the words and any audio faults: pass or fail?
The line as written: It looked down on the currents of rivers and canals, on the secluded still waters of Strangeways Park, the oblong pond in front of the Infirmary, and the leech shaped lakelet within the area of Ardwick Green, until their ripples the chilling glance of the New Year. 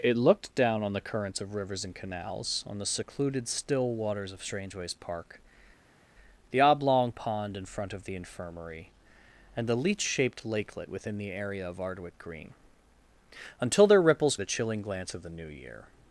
pass